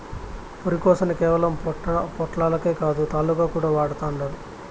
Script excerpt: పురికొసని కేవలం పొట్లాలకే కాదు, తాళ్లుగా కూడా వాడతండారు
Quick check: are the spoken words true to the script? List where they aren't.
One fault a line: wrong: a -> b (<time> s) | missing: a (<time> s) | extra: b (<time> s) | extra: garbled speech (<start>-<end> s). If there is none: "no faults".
no faults